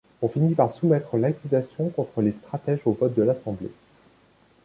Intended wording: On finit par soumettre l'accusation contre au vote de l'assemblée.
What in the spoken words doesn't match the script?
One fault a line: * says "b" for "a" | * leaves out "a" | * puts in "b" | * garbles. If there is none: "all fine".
* puts in "les stratèges"